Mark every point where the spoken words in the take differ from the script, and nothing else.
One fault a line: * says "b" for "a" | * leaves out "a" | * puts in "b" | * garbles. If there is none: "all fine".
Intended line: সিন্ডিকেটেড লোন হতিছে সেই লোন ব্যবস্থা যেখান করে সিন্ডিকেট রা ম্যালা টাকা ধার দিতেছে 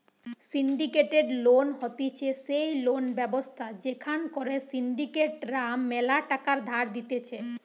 all fine